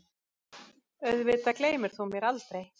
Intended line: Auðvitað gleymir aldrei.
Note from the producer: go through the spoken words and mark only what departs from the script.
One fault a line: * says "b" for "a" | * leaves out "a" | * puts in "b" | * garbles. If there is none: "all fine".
* puts in "þú mér"